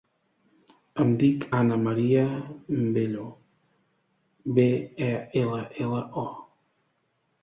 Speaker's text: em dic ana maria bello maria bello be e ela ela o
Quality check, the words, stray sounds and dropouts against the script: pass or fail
fail